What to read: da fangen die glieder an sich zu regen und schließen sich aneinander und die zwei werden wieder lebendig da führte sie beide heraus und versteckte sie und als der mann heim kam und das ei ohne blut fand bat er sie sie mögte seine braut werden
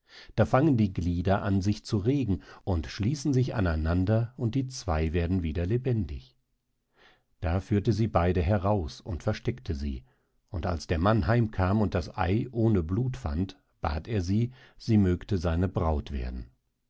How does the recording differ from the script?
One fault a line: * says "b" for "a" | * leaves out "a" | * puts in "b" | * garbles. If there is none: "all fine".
all fine